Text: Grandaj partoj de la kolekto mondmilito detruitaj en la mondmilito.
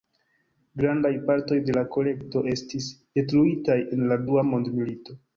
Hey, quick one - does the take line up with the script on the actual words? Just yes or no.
no